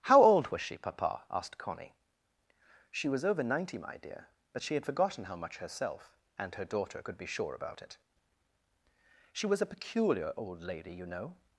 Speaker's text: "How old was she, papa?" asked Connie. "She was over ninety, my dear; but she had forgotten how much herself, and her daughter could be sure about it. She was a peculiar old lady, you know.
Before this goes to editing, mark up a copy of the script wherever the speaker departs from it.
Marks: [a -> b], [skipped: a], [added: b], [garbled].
"How old was she, papa?" asked Connie. "She was over ninety, my dear; but she had forgotten how much herself, and her daughter could be sure about it. She was a peculiar old lady, you know.